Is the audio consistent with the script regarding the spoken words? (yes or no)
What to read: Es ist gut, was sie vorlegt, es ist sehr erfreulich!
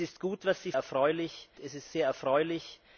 no